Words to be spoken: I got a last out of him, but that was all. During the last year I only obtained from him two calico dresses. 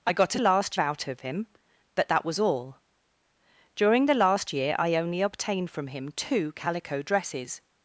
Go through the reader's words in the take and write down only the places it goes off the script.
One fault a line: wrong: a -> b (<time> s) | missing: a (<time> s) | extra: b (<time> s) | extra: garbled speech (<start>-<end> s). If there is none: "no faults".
no faults